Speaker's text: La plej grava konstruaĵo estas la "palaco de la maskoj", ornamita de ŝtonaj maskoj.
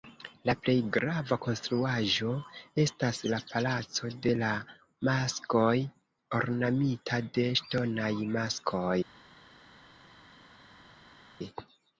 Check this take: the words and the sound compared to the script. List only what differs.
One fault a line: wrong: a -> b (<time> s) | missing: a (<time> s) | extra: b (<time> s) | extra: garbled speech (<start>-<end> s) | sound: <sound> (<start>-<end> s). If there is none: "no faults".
no faults